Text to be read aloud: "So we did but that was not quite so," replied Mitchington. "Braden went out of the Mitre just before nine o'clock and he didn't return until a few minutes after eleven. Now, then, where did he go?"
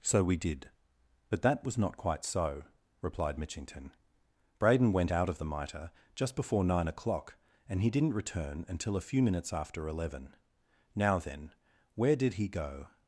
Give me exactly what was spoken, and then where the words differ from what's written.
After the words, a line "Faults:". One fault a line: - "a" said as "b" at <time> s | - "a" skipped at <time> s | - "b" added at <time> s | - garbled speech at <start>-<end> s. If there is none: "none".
"So we did but that was not quite so," replied Mitchington. "Braden went out of the Mitre just before nine o'clock and he didn't return until a few minutes after eleven. Now, then, where did he go?"
Faults:
none